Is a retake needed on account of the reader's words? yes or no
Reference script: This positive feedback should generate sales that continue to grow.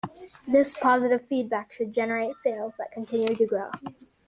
no